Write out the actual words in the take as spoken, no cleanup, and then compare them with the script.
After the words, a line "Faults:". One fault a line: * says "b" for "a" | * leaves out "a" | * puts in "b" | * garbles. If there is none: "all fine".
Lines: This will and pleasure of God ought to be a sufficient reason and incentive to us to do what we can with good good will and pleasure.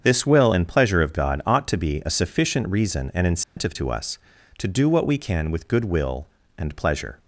This will and pleasure of God ought to be a sufficient reason and incentive to us to do what we can with good will and pleasure.
Faults:
* leaves out "good"